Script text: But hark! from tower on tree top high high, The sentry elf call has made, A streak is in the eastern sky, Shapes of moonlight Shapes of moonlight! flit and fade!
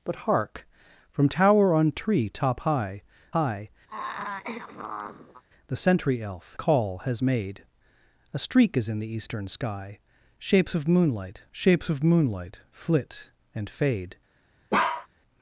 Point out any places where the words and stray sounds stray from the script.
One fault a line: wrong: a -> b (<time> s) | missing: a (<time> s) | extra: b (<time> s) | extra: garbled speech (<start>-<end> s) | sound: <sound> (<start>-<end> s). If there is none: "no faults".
sound: throat clearing (3.9-5.4 s)
sound: bark (14.7-15.1 s)